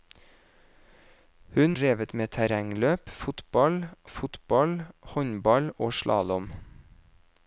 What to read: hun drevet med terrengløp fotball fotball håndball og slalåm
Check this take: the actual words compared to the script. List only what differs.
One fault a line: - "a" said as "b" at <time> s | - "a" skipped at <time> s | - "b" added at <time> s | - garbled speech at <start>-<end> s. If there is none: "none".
none